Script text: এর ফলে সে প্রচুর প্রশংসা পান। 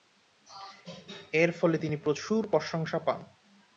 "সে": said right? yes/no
no